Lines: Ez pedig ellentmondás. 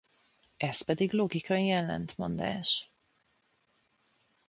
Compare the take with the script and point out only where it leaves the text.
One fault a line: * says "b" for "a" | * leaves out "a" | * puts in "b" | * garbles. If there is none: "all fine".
* puts in "logikai"